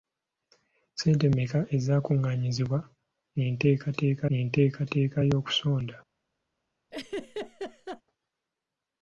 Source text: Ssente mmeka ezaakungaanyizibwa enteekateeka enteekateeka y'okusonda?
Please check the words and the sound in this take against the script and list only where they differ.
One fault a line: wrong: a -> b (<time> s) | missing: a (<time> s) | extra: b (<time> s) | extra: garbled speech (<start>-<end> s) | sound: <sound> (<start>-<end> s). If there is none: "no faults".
sound: laugh (6.9-8.0 s)